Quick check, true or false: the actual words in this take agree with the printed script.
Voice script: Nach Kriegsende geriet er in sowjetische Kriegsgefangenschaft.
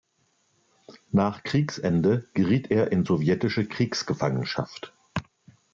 true